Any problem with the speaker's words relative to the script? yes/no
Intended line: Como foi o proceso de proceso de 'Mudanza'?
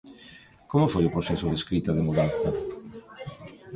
yes